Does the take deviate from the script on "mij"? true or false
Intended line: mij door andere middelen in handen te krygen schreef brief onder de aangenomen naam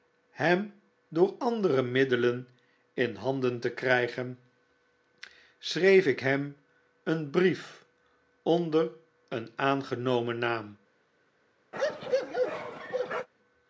true